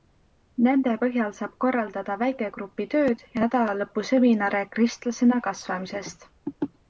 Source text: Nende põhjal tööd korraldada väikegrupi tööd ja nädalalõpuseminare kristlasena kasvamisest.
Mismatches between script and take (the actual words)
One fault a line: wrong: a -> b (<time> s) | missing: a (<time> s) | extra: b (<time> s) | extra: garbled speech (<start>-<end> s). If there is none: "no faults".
wrong: tööd -> saab (1.4 s)